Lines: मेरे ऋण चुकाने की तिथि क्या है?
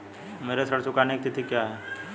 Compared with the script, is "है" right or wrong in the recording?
right